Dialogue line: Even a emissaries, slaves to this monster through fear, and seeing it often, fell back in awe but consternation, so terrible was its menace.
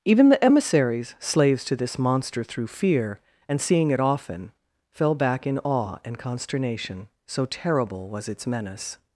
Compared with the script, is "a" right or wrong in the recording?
wrong